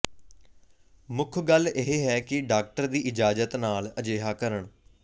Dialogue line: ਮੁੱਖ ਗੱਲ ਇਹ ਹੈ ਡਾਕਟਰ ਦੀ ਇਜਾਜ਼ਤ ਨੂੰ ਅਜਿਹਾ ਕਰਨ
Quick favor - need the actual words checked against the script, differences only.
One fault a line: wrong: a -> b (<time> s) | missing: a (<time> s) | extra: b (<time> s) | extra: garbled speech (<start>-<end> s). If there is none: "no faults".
extra: ਕਿ (2.2 s)
wrong: ਨੂੰ -> ਨਾਲ (3.5 s)